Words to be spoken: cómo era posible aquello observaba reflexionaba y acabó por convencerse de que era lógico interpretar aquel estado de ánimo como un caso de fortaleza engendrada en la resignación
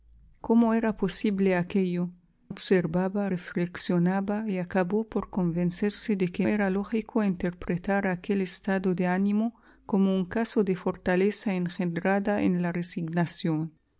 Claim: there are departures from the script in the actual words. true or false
false